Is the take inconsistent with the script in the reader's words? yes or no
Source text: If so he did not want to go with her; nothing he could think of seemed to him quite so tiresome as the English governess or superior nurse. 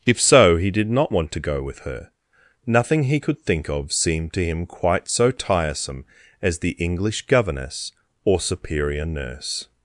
no